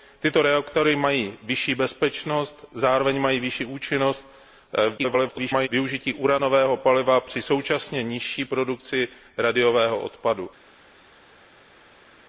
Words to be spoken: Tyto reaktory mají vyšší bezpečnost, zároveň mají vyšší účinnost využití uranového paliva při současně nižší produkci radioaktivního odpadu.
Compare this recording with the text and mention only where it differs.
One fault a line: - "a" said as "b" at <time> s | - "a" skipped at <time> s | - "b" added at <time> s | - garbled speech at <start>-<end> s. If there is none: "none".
- garbled speech at 5.0-5.7 s